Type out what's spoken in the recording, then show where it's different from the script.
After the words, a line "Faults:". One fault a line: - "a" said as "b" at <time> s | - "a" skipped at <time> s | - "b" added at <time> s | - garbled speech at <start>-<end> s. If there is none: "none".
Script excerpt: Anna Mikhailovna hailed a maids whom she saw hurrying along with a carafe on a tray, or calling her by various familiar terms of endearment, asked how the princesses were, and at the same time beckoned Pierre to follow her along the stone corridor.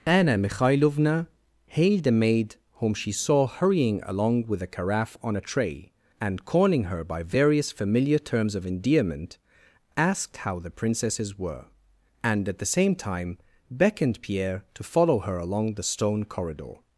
Anna Mikhailovna hailed a maid whom she saw hurrying along with a carafe on a tray, and calling her by various familiar terms of endearment, asked how the princesses were, and at the same time beckoned Pierre to follow her along the stone corridor.
Faults:
- "maids" said as "maid" at 2.1 s
- "or" said as "and" at 6.2 s